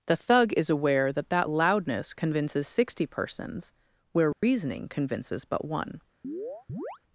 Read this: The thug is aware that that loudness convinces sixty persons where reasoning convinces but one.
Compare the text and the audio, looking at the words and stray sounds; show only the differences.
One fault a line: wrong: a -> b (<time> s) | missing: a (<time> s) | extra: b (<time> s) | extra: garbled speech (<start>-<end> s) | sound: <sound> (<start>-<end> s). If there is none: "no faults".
sound: dropout (4.3-4.4 s)
sound: chirp (6.2-7.0 s)